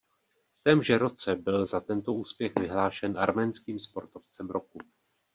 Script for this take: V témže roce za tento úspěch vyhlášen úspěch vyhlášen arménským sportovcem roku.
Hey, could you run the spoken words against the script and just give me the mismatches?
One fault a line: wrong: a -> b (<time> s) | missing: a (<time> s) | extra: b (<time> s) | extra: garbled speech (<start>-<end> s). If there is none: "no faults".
extra: byl (1.4 s)
missing: úspěch vyhlášen (3.2 s)